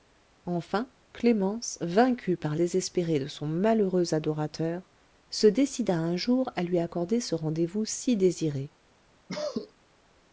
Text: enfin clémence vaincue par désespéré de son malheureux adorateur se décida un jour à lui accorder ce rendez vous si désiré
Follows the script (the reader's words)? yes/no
yes